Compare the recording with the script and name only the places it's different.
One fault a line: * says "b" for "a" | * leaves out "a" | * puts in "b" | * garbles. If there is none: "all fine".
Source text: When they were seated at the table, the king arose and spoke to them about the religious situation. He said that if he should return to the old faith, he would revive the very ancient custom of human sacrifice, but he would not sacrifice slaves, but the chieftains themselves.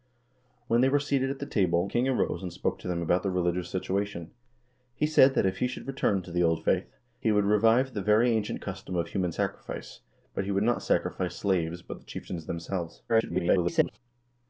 * leaves out "the"
* garbles